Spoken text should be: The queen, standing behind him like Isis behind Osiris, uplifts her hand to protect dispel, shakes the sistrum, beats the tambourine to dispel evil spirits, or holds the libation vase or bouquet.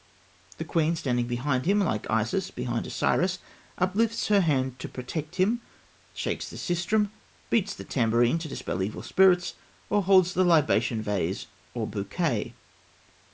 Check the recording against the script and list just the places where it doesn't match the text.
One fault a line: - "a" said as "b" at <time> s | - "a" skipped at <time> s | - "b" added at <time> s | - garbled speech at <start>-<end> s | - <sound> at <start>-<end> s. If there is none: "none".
- "dispel" said as "him" at 5.3 s